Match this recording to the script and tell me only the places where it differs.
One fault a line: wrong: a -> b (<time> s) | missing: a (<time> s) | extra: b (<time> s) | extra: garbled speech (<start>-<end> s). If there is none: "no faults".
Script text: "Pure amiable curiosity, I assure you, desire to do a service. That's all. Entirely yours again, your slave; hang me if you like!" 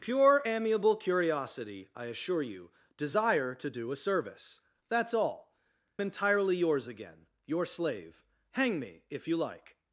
no faults